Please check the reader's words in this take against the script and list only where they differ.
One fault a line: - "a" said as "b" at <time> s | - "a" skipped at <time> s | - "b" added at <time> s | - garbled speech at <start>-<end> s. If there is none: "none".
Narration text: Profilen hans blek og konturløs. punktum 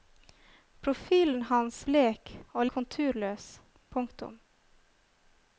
none